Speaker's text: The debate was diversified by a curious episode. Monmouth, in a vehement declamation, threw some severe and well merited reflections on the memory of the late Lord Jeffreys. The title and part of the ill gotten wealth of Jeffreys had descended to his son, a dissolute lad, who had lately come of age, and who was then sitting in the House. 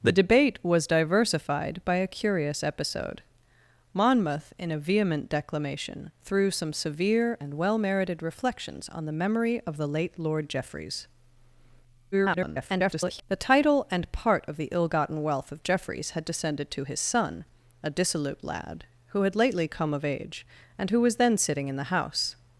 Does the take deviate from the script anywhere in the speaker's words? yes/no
yes